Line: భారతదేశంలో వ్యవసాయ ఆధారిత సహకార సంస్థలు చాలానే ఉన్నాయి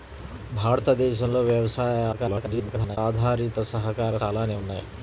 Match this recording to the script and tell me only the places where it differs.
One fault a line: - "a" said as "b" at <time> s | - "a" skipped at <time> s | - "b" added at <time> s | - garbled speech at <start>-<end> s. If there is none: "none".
- garbled speech at 2.1-3.0 s
- "సంస్థలు" skipped at 4.2 s